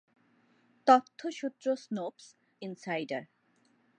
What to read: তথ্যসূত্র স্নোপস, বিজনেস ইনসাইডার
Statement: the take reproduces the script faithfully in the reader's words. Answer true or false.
false